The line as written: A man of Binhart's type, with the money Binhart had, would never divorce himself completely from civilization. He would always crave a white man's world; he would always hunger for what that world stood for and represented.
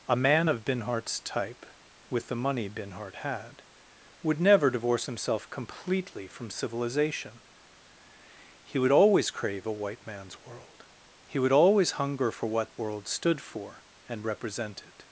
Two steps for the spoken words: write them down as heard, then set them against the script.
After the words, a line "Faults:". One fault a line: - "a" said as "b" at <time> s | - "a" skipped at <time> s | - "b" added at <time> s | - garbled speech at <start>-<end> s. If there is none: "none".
A man of Binhart's type, with the money Binhart had, would never divorce himself completely from civilization. He would always crave a white man's world; he would always hunger for what world stood for and represented.
Faults:
- "that" skipped at 12.8 s